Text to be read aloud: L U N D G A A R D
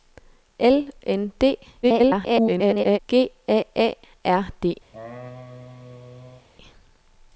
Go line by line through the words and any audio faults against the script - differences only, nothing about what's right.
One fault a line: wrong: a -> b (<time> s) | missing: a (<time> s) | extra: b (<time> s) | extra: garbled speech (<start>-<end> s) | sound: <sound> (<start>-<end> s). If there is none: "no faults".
missing: U (0.9 s)
extra: garbled speech (1.8-3.0 s)
sound: laugh (4.9-6.5 s)